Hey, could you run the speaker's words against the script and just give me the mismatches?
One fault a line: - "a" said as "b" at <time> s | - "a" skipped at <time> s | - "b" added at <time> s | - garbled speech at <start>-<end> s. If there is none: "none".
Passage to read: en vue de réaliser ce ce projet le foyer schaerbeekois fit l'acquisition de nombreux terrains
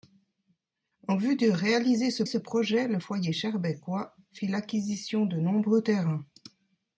none